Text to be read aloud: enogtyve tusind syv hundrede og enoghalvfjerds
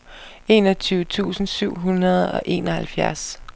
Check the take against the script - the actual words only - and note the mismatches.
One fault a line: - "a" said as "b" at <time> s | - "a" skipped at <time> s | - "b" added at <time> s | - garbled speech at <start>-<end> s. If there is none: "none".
none